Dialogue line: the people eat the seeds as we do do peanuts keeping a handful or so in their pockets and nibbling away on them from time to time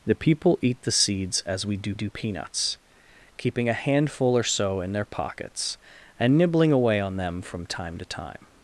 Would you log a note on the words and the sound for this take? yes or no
no